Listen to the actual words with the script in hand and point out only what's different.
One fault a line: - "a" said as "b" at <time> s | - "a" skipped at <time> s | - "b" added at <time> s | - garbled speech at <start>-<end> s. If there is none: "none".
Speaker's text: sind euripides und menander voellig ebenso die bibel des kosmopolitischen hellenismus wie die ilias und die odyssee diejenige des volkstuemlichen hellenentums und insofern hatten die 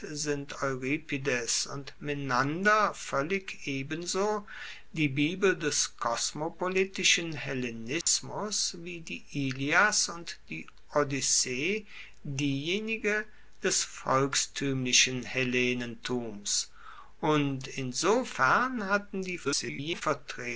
- garbled speech at 19.4-20.0 s